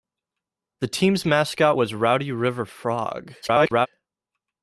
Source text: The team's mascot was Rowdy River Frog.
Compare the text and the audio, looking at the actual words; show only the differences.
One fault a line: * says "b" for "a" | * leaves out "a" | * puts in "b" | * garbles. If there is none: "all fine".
* garbles